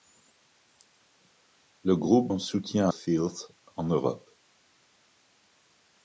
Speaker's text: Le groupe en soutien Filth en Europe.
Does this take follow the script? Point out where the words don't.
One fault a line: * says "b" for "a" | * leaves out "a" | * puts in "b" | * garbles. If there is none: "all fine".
all fine